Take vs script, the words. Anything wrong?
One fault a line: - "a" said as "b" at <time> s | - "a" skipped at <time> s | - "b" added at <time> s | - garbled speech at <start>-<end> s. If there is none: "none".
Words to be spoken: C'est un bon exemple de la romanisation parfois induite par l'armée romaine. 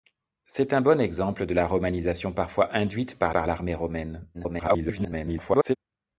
- "par" added at 3.3 s
- garbled speech at 4.3-5.8 s